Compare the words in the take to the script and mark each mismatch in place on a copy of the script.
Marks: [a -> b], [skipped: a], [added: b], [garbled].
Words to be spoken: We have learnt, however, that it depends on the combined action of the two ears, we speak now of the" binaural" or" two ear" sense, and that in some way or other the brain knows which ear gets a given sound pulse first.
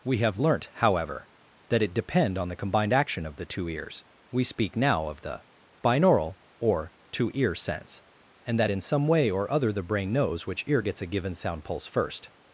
We have learnt, however, that it [depends -> depend] on the combined action of the two ears, we speak now of the" binaural" or" two ear" sense, and that in some way or other the brain knows which ear gets a given sound pulse first.